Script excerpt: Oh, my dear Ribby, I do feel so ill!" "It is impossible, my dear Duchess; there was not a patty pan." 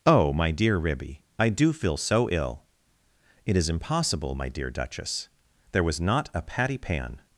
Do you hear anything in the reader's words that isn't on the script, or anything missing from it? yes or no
no